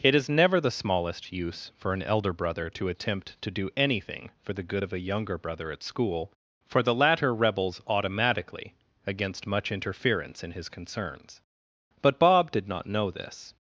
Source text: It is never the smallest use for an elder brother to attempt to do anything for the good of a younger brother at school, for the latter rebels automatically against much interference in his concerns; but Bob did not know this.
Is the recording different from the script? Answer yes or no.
no